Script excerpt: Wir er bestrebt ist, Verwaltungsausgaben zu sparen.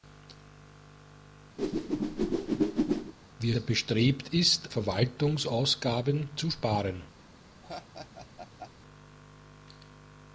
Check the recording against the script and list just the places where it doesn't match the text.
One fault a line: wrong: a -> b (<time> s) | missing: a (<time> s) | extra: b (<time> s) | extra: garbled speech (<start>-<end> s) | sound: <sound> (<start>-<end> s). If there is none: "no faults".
sound: whoosh (1.6-3.1 s)
sound: laugh (7.6-8.7 s)